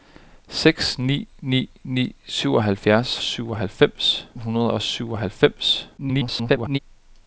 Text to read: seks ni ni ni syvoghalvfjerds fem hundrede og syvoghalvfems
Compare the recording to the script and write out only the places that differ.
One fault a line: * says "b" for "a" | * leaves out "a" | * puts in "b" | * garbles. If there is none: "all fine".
* says "syvoghalvfems" for "fem"
* garbles